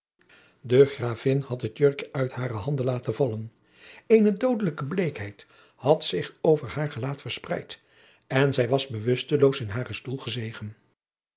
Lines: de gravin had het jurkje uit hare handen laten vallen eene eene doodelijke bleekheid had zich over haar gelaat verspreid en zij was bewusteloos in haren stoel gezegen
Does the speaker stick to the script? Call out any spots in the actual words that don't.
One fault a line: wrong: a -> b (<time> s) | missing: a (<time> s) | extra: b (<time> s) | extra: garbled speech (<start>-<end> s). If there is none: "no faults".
missing: eene (4.4 s)